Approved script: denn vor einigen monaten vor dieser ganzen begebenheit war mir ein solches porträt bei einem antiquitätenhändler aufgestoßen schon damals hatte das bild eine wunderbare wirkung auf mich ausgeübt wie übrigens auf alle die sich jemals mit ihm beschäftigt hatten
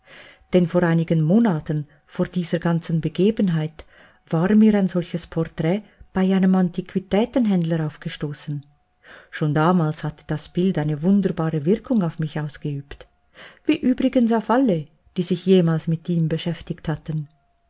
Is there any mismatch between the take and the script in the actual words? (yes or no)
no